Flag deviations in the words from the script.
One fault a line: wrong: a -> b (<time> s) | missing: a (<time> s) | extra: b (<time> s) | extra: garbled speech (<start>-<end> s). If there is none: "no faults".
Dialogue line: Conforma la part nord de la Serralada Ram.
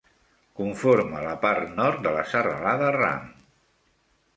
no faults